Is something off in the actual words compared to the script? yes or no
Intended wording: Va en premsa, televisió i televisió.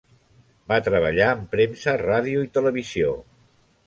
yes